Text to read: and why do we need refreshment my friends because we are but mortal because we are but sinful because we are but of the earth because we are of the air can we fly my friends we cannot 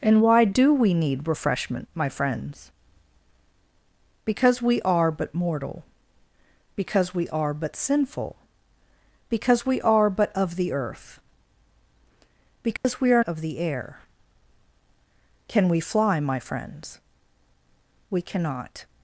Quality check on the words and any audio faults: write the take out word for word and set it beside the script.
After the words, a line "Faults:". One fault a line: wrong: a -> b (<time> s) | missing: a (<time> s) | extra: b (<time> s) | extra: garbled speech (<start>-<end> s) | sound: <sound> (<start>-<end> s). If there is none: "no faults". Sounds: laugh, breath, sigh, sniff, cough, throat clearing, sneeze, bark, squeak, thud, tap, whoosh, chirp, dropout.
and why do we need refreshment my friends because we are but mortal because we are but sinful because we are but of the earth because we are of the air can we fly my friends we cannot
Faults:
sound: dropout (12.8-12.8 s)